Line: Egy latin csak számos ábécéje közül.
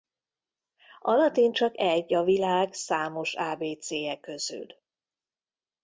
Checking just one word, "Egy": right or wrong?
wrong